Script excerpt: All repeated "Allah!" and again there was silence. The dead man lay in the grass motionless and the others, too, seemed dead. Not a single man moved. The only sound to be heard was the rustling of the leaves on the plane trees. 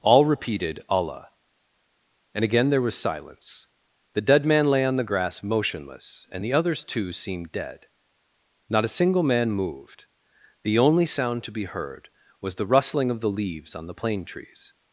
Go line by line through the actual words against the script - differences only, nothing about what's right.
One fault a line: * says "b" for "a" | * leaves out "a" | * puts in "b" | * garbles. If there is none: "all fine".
* says "on" for "in"